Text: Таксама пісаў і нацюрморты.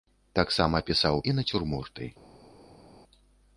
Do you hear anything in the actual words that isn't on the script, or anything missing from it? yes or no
no